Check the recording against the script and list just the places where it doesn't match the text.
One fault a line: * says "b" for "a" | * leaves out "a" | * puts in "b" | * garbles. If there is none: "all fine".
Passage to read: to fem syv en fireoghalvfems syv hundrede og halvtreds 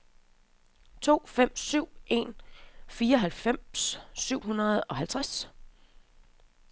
all fine